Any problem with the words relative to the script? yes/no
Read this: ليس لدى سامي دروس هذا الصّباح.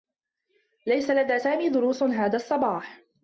no